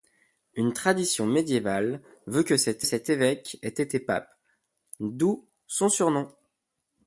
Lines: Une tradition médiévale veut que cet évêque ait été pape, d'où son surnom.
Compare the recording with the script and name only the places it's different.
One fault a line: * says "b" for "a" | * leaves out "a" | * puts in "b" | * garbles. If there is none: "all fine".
* puts in "cet"